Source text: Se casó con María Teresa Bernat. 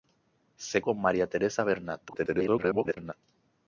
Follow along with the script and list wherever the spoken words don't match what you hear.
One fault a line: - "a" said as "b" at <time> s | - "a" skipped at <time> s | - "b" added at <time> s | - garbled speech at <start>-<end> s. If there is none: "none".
- "casó" skipped at 0.8 s
- garbled speech at 2.1-3.1 s